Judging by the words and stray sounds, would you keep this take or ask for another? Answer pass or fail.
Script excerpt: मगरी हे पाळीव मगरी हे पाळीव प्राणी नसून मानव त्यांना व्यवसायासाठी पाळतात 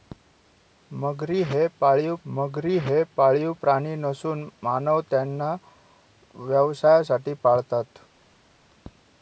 pass